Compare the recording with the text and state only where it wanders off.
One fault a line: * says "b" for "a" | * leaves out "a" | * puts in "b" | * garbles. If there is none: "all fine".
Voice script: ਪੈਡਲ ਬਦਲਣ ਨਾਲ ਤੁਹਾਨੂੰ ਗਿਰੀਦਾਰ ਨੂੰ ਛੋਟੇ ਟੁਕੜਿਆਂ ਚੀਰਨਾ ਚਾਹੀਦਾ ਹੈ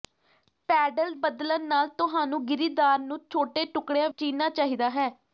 all fine